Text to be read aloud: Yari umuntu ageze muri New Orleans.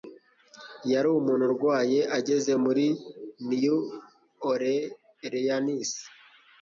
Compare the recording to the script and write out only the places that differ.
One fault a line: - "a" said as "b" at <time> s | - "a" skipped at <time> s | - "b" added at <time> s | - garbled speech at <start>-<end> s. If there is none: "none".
- "urwaye" added at 1.5 s